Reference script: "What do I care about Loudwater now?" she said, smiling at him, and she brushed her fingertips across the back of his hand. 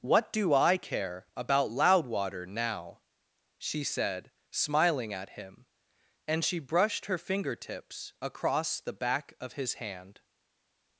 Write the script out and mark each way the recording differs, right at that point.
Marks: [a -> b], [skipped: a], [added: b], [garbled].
"What do I care about Loudwater now?" she said, smiling at him, and she brushed her fingertips across the back of his hand.